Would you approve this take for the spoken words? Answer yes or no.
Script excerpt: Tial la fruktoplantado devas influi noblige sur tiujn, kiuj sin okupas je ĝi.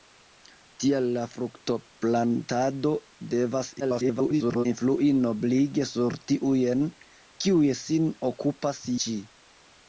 no